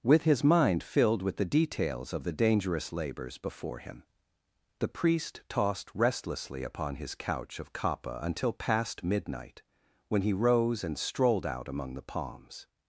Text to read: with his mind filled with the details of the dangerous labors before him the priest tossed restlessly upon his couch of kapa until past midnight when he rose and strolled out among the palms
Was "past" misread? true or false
false